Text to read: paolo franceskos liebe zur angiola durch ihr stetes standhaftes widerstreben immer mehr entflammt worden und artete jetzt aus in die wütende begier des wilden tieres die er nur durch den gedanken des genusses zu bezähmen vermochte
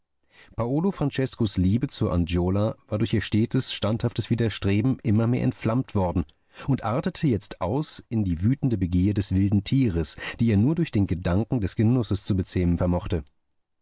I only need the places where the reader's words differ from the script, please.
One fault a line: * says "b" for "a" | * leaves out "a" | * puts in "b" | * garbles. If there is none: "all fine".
* puts in "war"